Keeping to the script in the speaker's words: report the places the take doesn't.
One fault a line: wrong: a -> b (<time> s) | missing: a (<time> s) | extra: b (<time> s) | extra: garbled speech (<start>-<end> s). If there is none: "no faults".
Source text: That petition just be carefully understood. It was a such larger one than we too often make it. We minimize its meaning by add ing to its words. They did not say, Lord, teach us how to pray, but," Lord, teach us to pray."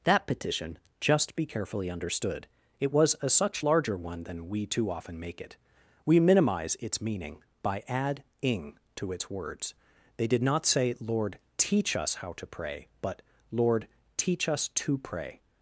no faults